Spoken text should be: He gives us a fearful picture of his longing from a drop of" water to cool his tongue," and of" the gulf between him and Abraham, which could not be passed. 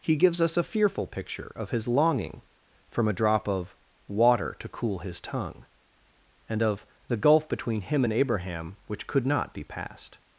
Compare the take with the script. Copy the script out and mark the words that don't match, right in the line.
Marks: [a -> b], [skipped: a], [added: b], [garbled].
He gives us a fearful picture of his longing from a drop of" water to cool his tongue," and of" the gulf between him and Abraham, which could not be passed.